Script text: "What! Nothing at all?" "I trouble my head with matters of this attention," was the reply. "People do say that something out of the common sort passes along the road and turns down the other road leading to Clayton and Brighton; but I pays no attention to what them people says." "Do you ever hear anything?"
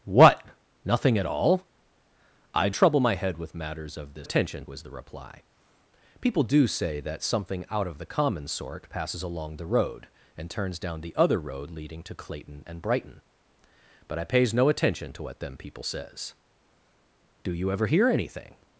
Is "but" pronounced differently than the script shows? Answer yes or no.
no